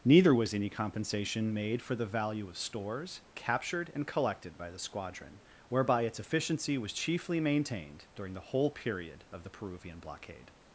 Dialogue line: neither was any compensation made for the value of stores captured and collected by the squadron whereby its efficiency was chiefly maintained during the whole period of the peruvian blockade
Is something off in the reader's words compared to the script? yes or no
no